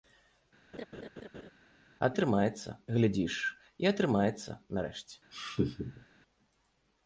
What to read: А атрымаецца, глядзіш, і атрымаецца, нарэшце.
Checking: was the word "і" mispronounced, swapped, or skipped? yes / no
no